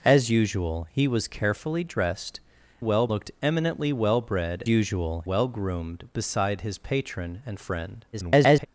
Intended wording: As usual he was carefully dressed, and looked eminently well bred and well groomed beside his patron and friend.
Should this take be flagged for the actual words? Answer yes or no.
yes